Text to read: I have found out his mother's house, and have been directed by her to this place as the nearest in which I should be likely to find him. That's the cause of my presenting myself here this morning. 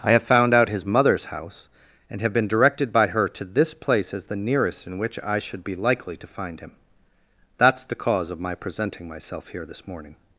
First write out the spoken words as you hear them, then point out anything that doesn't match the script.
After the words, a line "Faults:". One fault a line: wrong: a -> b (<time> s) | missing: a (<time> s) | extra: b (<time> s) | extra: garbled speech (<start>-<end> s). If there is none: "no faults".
I have found out his mother's house, and have been directed by her to this place as the nearest in which I should be likely to find him. That's the cause of my presenting myself here this morning.
Faults:
no faults